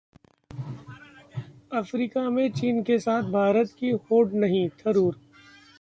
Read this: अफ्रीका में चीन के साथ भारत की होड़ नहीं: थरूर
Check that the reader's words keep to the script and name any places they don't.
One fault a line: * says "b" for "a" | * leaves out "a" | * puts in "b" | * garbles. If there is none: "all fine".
all fine